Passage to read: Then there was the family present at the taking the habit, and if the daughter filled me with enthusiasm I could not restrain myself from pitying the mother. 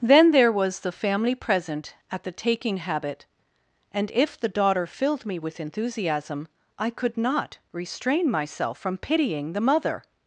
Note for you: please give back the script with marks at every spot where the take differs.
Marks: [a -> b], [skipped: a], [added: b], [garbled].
Then there was the family present at the taking [skipped: the] habit, and if the daughter filled me with enthusiasm I could not restrain myself from pitying the mother.